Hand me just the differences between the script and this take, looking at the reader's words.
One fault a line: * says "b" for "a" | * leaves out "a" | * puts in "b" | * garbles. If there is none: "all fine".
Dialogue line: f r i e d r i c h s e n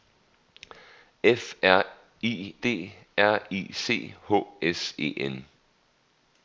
* leaves out "e"